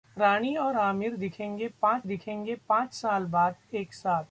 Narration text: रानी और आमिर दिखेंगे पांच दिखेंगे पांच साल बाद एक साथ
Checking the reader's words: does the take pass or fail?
pass